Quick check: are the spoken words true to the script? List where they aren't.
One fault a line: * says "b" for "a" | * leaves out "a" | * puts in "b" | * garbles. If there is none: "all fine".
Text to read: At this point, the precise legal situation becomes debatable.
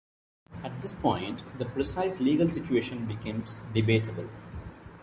all fine